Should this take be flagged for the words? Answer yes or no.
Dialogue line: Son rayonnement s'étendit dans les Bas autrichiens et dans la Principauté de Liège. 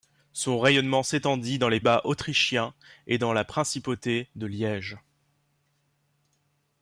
no